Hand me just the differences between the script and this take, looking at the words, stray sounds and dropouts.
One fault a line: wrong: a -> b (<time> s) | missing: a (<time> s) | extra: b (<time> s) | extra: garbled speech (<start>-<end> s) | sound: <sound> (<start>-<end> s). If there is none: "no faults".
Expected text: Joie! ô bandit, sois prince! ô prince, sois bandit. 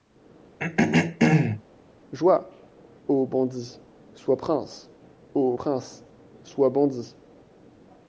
sound: throat clearing (0.6-1.6 s)